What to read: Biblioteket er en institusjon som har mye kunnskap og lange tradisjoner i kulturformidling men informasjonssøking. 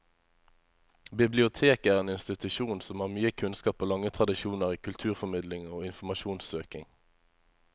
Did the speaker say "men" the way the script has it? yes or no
no